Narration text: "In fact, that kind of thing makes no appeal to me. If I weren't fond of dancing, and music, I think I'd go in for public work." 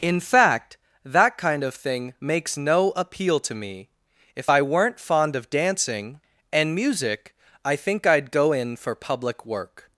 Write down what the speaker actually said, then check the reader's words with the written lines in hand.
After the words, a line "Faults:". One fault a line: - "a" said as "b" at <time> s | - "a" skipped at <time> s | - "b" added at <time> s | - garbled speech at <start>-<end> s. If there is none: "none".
"In fact, that kind of thing makes no appeal to me. If I weren't fond of dancing, and music, I think I'd go in for public work."
Faults:
none